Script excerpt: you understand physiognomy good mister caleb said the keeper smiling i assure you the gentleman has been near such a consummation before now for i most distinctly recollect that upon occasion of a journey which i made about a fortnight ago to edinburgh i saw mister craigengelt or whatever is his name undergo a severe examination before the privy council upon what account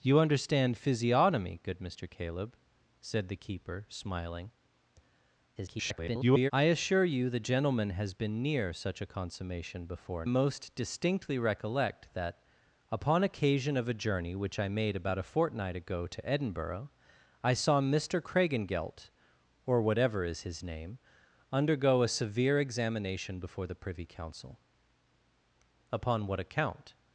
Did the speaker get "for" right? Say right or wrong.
wrong